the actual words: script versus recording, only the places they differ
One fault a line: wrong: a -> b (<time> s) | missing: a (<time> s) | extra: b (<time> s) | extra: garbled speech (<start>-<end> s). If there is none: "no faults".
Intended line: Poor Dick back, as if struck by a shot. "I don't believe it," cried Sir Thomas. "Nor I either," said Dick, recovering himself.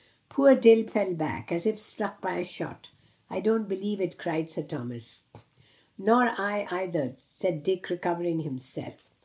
extra: fell (0.9 s)